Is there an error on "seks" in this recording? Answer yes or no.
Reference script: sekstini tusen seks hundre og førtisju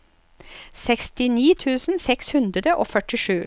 no